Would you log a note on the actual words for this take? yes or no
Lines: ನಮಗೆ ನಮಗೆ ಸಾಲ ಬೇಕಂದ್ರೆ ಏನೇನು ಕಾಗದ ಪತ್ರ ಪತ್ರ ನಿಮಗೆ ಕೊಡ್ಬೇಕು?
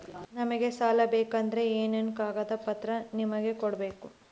yes